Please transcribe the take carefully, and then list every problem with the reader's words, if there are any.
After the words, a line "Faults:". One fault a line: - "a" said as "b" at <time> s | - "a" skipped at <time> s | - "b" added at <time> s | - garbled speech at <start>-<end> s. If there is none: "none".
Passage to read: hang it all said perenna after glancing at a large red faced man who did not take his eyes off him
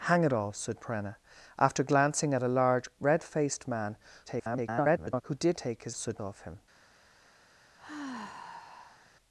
hang it all said perenna after glancing at a large red faced man [garbled] who did take his said off him
Faults:
- garbled speech at 4.3-5.2 s
- "not" skipped at 5.6 s
- "eyes" said as "said" at 5.9 s